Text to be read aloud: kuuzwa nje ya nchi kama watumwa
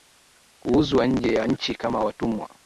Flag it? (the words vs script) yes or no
no